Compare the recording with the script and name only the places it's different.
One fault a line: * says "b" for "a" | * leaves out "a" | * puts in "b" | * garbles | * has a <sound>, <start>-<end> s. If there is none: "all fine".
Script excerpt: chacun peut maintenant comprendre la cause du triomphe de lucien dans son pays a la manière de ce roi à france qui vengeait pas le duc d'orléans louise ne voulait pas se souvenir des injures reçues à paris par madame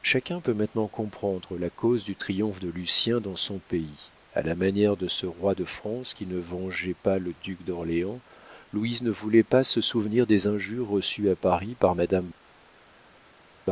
* says "de" for "à"
* puts in "ne"